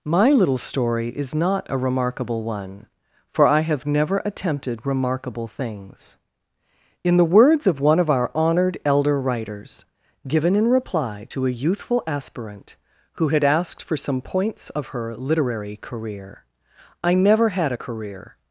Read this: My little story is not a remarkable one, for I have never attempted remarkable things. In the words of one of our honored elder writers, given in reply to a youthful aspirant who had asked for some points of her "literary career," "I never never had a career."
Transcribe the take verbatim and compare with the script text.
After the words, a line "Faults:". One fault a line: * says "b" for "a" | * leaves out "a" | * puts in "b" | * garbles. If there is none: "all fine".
My little story is not a remarkable one, for I have never attempted remarkable things. In the words of one of our honored elder writers, given in reply to a youthful aspirant who had asked for some points of her "literary career," "I never had a career."
Faults:
* leaves out "never"